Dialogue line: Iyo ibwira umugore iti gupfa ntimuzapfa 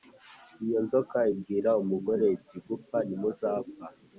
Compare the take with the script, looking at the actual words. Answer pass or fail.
fail